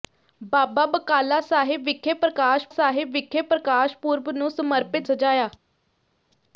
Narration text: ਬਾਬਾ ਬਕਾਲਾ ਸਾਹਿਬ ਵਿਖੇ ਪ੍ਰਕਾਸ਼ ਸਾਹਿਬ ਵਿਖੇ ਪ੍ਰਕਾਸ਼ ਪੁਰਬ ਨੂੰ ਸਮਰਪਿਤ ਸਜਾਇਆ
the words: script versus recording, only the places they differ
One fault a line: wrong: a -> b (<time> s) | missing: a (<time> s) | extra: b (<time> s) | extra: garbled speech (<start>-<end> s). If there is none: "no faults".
no faults